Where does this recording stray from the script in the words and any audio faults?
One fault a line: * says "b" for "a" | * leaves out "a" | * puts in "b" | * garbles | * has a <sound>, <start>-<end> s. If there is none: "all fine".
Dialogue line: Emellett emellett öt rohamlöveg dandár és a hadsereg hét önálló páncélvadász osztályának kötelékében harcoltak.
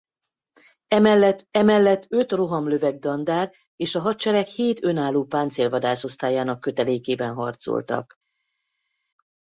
all fine